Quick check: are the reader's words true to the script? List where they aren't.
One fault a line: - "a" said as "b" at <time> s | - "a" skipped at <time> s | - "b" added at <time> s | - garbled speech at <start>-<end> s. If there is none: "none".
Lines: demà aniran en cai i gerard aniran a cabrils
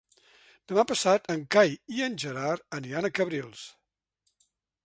- "aniran" said as "passat" at 0.9 s
- "en" added at 2.1 s